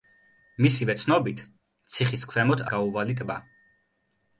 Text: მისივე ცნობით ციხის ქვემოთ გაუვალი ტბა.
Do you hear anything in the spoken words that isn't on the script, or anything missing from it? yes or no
no